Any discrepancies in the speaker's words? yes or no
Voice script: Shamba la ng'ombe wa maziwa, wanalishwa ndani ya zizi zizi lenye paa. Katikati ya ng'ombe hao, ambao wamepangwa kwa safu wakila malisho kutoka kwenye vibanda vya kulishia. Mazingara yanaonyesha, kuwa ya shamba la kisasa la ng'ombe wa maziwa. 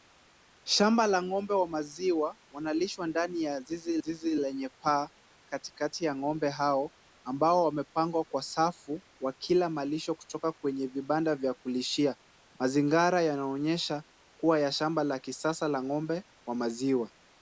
no